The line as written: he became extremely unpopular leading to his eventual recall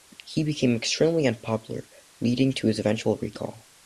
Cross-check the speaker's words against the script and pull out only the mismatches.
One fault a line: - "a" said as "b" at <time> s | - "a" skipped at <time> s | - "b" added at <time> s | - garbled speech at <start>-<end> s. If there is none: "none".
none